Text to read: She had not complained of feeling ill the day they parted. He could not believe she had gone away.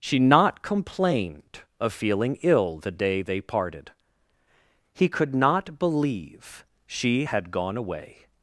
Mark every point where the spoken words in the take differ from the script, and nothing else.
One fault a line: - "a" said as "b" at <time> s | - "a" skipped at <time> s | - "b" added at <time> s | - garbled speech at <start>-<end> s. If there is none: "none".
- "had" skipped at 0.2 s